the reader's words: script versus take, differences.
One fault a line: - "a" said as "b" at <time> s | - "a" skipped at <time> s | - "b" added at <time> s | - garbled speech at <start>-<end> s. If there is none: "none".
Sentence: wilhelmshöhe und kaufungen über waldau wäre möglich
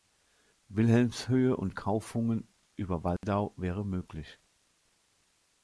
none